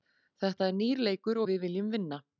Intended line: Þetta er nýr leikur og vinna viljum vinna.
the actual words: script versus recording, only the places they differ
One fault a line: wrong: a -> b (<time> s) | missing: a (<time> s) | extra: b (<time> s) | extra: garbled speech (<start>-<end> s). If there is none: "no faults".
wrong: vinna -> við (1.5 s)